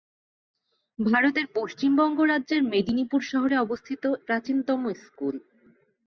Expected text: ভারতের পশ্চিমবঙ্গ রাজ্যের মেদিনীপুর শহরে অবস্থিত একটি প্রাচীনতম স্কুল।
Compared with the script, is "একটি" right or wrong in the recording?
wrong